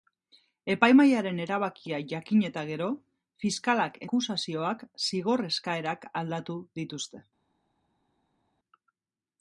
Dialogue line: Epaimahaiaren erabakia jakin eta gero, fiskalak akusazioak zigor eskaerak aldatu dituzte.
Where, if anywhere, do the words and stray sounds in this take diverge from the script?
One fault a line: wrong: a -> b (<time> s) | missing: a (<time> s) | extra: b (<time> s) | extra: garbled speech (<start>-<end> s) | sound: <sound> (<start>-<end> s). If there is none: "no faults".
no faults